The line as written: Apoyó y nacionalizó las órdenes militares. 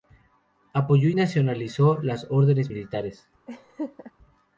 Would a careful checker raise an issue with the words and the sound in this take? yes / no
yes